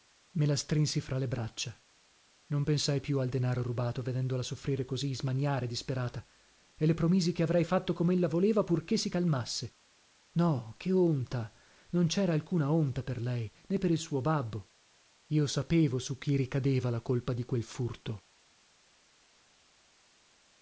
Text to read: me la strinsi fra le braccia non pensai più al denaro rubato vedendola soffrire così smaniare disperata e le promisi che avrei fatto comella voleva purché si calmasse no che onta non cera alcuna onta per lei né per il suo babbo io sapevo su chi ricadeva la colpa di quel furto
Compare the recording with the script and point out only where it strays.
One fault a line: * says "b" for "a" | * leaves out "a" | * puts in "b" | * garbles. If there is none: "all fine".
all fine